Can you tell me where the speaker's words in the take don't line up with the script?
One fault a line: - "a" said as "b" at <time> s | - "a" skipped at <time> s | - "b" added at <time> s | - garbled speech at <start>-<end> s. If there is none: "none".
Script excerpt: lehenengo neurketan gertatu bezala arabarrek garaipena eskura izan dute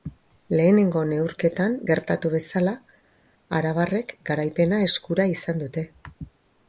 none